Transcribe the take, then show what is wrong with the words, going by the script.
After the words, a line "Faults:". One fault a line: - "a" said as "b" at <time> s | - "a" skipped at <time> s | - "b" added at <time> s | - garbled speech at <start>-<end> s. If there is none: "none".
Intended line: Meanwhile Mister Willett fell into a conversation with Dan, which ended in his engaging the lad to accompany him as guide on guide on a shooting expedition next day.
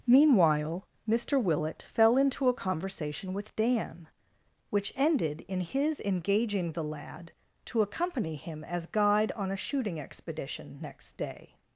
Meanwhile Mister Willett fell into a conversation with Dan, which ended in his engaging the lad to accompany him as guide on a shooting expedition next day.
Faults:
- "guide on" skipped at 9.5 s